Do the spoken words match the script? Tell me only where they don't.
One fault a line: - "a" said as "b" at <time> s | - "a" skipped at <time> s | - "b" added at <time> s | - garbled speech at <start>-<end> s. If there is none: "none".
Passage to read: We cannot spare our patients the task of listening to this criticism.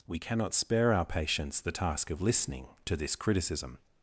none